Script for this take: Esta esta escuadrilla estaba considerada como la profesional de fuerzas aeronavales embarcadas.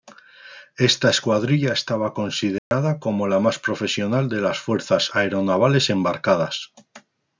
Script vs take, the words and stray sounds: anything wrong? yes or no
yes